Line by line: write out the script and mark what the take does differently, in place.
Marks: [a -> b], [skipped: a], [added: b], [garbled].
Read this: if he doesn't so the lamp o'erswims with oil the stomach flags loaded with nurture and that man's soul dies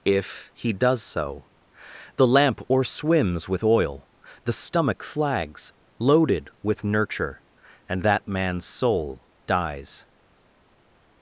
if he [doesn't -> does] so the lamp o'erswims with oil the stomach flags loaded with nurture and that man's soul dies